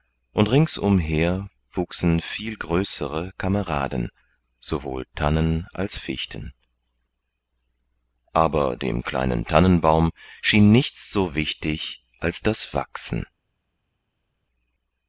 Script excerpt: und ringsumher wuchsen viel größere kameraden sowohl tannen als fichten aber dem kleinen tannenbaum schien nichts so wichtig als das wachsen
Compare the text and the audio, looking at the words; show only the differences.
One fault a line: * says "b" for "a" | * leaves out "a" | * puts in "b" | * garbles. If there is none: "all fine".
all fine